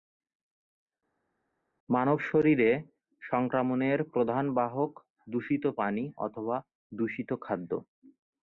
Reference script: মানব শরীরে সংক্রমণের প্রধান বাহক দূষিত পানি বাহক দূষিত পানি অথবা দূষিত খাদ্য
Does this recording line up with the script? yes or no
no